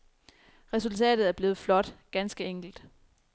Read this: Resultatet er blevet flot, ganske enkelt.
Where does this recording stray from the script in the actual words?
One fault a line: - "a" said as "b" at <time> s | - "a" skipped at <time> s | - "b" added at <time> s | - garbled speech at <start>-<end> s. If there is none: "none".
none